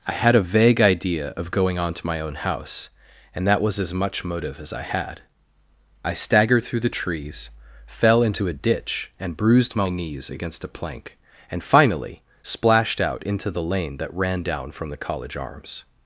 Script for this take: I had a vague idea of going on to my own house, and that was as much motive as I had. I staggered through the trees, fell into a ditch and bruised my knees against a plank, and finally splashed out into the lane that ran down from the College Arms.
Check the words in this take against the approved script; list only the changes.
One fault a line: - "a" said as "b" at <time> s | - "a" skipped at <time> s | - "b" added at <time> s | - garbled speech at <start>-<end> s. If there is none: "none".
none